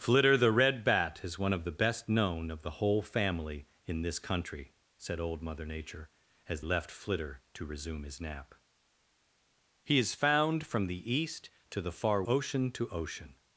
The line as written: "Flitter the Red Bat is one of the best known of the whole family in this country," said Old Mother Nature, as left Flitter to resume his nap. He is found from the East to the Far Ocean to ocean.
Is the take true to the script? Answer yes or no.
yes